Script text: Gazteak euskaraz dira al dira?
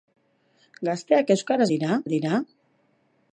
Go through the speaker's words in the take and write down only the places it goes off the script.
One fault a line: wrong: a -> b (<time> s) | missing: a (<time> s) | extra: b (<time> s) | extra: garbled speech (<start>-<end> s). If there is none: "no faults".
no faults